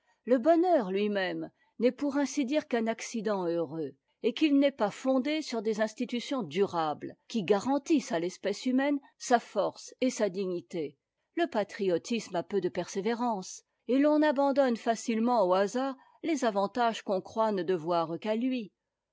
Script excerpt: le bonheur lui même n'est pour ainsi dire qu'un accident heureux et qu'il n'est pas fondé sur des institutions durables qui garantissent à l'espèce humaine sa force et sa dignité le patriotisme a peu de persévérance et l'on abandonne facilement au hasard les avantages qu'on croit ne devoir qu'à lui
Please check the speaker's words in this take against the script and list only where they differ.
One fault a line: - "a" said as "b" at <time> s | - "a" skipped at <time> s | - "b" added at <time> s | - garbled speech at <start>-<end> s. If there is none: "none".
none